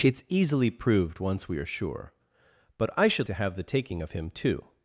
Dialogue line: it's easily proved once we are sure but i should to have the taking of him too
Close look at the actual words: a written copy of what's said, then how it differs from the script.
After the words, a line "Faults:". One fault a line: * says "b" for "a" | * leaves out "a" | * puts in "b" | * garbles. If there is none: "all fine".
it's easily proved once we are sure but i should to have the taking of him too
Faults:
all fine